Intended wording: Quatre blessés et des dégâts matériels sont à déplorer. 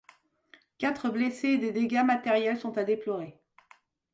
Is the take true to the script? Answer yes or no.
yes